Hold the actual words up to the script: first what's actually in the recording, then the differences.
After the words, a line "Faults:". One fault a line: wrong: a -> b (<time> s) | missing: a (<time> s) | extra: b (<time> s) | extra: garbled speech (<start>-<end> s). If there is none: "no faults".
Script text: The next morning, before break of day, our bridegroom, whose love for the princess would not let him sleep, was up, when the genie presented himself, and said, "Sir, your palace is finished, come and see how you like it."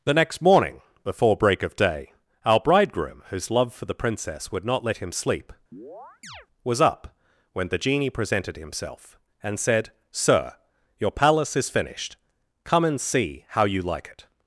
The next morning, before break of day, our bridegroom, whose love for the princess would not let him sleep, was up, when the genie presented himself, and said, "Sir, your palace is finished, come and see how you like it."
Faults:
no faults